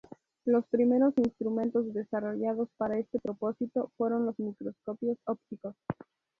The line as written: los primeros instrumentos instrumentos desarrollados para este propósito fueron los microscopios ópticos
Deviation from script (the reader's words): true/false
true